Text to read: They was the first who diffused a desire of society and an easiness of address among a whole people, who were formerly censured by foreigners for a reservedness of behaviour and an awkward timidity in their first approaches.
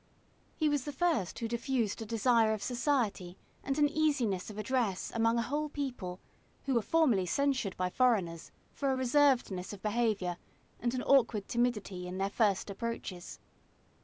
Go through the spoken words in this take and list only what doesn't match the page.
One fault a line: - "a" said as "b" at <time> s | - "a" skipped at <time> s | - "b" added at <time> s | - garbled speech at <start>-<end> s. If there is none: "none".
- "They" said as "He" at 0.6 s